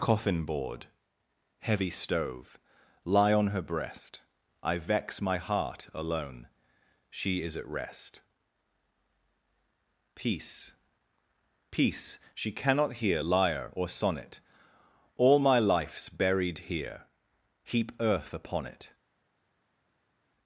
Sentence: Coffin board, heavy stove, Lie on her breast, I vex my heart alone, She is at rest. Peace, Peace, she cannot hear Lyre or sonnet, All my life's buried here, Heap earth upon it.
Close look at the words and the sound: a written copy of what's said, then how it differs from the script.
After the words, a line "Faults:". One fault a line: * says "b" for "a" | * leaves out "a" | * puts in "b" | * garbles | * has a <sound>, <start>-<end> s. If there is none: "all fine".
Coffin board, heavy stove, Lie on her breast, I vex my heart alone, She is at rest. Peace, Peace, she cannot hear Lyre or sonnet, All my life's buried here, Heap earth upon it.
Faults:
all fine